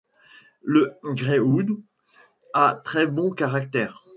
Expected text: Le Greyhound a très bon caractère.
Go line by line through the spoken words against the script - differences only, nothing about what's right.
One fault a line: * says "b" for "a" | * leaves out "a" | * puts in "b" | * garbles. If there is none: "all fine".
all fine